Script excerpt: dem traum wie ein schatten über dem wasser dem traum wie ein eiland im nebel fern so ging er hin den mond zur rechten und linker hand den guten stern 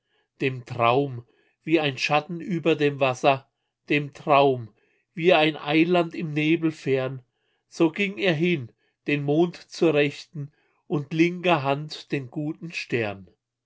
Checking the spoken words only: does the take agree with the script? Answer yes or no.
yes